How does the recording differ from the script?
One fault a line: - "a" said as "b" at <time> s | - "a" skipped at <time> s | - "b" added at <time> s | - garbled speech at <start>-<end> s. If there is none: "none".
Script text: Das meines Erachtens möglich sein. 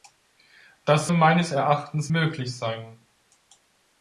none